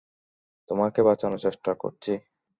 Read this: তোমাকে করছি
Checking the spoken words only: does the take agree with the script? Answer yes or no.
no